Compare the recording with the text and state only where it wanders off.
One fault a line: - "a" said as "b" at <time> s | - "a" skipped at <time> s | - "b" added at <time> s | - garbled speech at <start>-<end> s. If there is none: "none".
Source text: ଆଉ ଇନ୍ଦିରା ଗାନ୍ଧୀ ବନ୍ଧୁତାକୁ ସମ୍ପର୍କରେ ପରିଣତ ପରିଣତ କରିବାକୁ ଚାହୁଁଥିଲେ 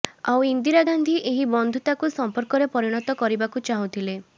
- "ଏହି" added at 1.2 s
- "ପରିଣତ" skipped at 3.2 s